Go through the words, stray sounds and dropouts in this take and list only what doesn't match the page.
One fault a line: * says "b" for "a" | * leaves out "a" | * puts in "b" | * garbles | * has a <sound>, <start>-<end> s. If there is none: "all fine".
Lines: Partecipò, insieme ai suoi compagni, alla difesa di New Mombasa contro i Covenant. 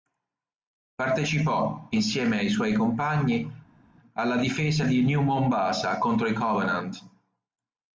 all fine